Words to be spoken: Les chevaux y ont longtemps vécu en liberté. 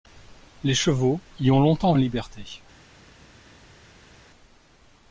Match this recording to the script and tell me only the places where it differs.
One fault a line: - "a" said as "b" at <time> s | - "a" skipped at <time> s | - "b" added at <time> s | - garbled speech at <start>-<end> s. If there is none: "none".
- "vécu" skipped at 1.9 s